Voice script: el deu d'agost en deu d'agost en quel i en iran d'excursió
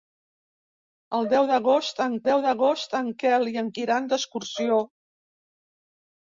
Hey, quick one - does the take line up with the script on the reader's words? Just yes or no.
yes